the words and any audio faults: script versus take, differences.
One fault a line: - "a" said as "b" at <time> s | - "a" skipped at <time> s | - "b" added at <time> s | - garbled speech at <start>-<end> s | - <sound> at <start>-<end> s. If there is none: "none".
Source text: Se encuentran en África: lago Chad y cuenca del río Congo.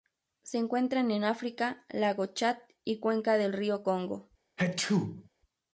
- sneeze at 4.6-5.3 s